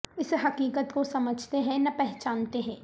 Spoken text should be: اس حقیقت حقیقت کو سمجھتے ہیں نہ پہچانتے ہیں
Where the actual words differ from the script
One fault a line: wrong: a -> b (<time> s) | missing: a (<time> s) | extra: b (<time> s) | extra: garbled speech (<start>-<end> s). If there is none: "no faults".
missing: حقیقت (0.9 s)